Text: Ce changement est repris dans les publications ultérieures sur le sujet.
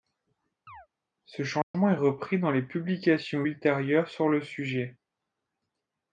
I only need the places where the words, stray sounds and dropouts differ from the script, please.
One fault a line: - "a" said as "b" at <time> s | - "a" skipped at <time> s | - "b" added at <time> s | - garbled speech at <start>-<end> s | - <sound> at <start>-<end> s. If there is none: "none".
- chirp at 0.7-0.9 s
- dropout at 1.6-1.7 s